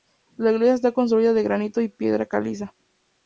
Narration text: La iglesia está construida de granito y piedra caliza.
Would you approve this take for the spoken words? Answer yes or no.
yes